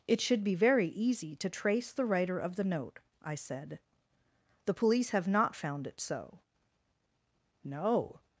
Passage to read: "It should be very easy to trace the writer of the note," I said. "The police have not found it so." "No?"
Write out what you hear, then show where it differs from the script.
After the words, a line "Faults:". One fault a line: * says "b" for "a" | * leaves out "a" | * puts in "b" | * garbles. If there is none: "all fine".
"It should be very easy to trace the writer of the note," I said. "The police have not found it so." "No?"
Faults:
all fine